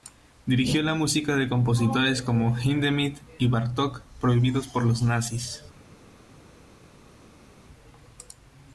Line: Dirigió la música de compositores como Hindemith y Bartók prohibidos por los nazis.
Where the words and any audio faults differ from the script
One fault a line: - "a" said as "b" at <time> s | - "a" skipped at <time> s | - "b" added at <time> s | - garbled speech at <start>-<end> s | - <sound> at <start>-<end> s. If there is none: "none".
none